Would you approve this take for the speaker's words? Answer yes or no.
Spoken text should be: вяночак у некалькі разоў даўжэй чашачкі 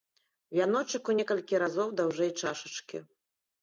yes